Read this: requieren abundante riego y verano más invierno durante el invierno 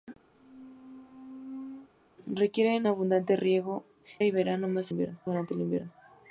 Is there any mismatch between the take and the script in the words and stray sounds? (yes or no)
yes